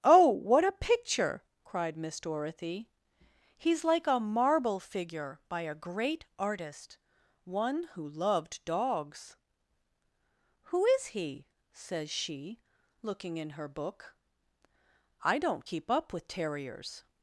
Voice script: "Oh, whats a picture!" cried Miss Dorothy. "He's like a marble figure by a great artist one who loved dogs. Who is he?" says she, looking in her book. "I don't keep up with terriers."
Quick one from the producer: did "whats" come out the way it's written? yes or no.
no